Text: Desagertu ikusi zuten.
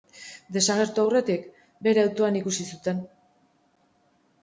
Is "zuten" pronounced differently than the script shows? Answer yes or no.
no